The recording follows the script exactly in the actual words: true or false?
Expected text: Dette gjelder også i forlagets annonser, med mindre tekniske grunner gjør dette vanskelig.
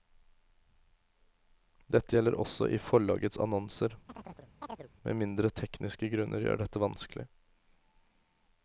true